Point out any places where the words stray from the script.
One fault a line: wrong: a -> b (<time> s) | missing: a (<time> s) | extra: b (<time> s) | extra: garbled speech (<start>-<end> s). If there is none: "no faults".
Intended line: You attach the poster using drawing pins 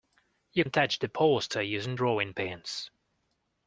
no faults